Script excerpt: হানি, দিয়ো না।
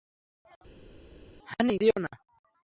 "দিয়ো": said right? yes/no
yes